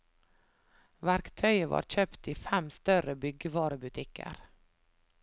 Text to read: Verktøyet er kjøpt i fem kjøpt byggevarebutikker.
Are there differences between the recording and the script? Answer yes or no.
yes